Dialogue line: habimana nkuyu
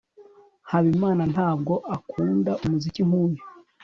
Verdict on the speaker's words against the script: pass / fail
fail